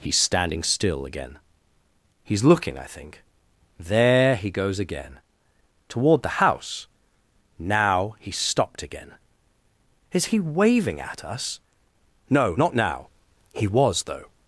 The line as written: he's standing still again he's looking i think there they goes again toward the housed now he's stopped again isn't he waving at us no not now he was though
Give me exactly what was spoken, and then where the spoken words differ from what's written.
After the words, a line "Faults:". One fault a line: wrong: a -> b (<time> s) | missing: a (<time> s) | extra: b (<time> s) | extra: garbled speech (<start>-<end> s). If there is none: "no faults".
he's standing still again he's looking i think there he goes again toward the house now he's stopped again is he waving at us no not now he was though
Faults:
wrong: they -> he (4.3 s)
wrong: housed -> house (6.4 s)
wrong: isn't -> is (10.1 s)